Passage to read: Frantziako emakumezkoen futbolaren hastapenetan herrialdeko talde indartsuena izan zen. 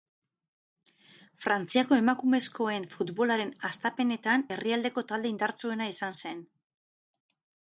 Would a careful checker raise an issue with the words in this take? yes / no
no